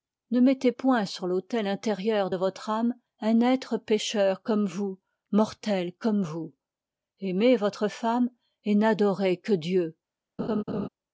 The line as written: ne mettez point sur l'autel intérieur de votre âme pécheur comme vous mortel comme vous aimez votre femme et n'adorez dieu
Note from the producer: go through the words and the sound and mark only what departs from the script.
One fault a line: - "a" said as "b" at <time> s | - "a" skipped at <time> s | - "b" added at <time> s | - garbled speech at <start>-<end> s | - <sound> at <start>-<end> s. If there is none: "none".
- "un être" added at 3.2 s
- "que" added at 9.4 s
- laugh at 10.4-10.9 s